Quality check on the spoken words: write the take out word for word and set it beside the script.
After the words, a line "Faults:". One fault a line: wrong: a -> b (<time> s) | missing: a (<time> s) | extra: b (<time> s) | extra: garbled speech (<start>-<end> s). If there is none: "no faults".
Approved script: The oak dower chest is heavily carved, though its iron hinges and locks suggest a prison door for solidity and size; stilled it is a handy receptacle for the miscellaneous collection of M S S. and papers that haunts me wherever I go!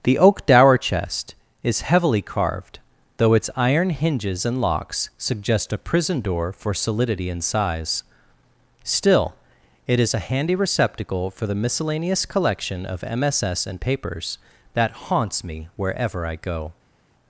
The oak dower chest is heavily carved, though its iron hinges and locks suggest a prison door for solidity and size; still it is a handy receptacle for the miscellaneous collection of M S S. and papers that haunts me wherever I go!
Faults:
wrong: stilled -> still (8.8 s)